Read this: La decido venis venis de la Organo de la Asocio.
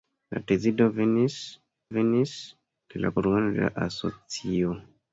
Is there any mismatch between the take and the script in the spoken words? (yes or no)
no